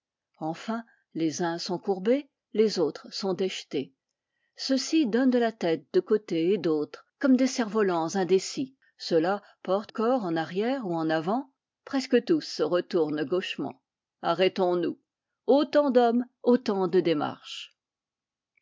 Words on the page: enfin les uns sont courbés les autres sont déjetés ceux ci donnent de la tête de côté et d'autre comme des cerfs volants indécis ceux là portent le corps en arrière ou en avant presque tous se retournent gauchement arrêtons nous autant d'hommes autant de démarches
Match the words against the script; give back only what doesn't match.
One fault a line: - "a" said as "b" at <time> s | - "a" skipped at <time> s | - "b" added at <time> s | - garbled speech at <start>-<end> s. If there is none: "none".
- "le" skipped at 9.9 s